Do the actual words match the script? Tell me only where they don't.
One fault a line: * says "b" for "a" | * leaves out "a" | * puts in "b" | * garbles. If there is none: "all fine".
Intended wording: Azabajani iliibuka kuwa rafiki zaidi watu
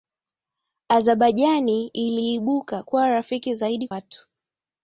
all fine